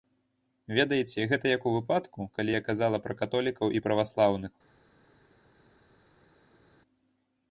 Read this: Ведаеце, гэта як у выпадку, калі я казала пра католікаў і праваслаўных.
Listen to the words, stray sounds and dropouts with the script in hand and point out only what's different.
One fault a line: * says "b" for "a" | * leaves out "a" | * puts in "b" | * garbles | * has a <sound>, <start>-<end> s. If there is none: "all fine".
all fine